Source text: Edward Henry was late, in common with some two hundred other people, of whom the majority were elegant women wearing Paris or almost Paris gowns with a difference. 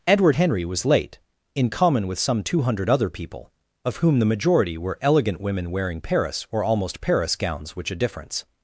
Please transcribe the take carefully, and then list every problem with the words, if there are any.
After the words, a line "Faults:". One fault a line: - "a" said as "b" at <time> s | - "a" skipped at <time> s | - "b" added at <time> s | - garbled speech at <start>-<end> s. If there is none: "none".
Edward Henry was late, in common with some two hundred other people, of whom the majority were elegant women wearing Paris or almost Paris gowns which a difference.
Faults:
- "with" said as "which" at 7.8 s